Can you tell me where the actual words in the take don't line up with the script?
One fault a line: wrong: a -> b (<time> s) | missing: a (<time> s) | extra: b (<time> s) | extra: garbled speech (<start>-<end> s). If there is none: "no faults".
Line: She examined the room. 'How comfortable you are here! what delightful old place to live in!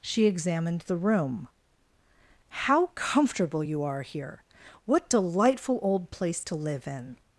no faults